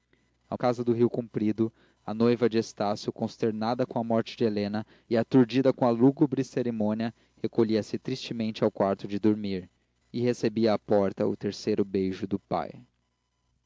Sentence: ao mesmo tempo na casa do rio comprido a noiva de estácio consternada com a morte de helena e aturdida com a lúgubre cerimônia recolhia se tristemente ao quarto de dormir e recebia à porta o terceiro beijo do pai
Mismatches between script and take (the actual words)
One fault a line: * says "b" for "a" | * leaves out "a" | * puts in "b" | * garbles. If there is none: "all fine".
* leaves out "mesmo tempo na"